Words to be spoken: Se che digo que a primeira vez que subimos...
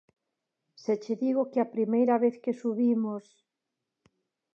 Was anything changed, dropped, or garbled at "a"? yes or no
no